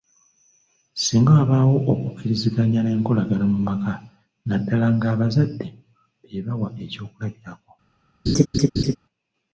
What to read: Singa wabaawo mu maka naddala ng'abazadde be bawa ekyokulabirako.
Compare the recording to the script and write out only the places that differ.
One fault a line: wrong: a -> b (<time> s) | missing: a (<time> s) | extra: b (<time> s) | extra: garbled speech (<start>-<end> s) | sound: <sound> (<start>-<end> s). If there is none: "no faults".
extra: okukkiriziganya n'enkolagana (1.9 s)
sound: laugh (8.3-9.0 s)